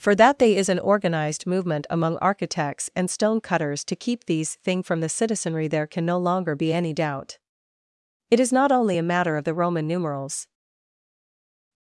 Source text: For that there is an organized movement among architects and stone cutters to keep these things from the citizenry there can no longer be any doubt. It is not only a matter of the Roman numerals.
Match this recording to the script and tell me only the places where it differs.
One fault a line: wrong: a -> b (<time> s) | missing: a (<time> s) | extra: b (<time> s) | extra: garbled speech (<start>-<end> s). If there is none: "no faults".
wrong: there -> they (0.4 s)
wrong: things -> thing (4.5 s)